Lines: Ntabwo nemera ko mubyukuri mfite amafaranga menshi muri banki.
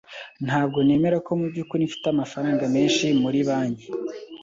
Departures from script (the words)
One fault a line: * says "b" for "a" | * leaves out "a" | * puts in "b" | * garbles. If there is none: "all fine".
all fine